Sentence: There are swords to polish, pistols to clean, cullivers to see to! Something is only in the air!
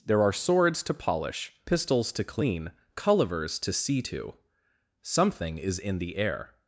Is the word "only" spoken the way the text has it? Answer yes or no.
no